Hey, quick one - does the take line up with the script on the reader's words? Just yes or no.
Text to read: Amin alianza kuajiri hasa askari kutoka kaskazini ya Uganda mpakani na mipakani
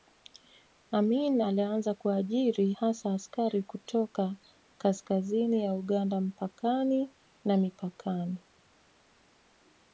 yes